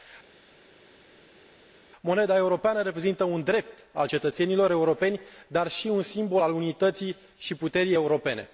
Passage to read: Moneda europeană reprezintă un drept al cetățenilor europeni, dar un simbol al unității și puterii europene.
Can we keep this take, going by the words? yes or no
no